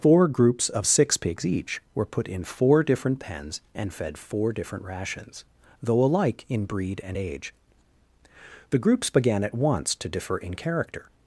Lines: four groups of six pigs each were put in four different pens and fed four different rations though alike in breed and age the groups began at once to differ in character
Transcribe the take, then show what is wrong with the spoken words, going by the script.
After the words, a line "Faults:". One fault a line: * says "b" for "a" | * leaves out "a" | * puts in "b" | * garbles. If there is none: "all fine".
four groups of six pigs each were put in four different pens and fed four different rations though alike in breed and age the groups began at once to differ in character
Faults:
all fine